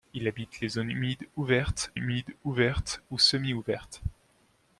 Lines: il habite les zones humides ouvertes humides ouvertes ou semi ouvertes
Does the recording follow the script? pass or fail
pass